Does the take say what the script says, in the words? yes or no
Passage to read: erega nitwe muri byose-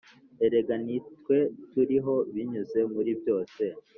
no